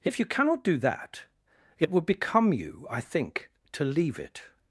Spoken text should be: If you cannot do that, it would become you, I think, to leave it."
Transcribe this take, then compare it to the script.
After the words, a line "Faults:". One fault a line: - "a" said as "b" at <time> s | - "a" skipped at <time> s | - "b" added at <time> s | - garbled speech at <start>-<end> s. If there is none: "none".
If you cannot do that, it would become you, I think, to leave it."
Faults:
none